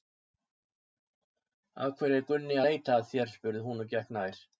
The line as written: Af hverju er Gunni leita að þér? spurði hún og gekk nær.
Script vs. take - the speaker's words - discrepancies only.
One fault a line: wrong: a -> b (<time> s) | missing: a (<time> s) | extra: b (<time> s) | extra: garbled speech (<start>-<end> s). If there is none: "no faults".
no faults